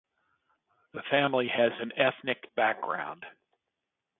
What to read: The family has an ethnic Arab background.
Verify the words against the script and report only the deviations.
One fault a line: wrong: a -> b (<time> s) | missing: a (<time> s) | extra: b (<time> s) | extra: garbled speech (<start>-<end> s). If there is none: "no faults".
missing: Arab (2.4 s)